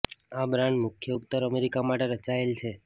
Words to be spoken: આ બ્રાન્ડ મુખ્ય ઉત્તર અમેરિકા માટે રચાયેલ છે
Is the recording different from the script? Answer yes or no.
no